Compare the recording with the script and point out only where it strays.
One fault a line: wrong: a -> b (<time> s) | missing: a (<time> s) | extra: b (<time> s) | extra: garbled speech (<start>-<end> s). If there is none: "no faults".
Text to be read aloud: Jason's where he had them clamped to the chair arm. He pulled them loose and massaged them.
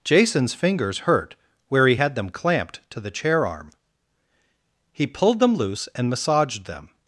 extra: fingers hurt (0.5 s)